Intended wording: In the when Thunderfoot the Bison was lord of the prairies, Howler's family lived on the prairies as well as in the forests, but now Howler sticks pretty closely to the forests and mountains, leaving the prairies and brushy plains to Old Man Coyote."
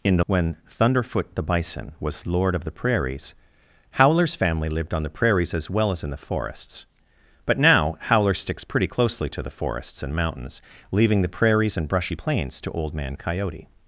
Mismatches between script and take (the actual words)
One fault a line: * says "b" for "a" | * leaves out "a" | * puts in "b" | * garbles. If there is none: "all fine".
all fine